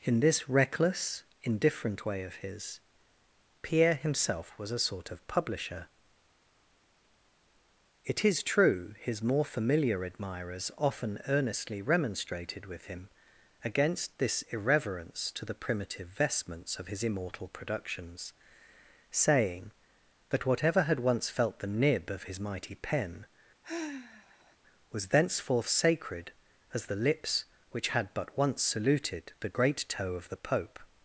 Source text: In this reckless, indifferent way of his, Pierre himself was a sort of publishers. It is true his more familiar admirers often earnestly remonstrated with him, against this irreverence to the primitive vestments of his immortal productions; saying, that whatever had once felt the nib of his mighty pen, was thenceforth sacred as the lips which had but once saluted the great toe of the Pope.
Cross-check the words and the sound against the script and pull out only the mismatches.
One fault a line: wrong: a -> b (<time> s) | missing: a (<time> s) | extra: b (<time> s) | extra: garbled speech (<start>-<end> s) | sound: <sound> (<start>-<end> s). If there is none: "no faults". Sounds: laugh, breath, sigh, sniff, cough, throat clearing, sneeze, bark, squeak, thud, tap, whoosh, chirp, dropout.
wrong: publishers -> publisher (5.3 s)
sound: sigh (23.6-24.6 s)